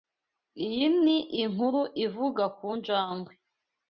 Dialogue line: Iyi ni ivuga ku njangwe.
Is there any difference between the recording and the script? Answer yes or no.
yes